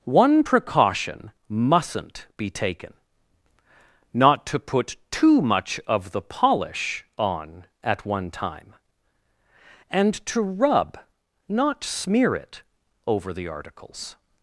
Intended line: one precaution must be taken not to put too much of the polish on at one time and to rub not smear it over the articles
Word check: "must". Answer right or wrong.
wrong